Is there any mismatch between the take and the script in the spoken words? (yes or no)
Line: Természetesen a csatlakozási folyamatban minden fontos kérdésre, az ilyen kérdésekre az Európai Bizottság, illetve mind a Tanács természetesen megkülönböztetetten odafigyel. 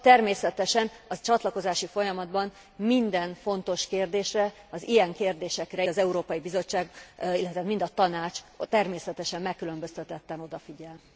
no